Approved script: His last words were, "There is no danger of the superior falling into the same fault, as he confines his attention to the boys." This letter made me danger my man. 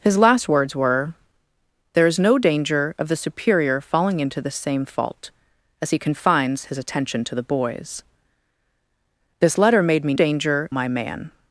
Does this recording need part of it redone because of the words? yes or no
no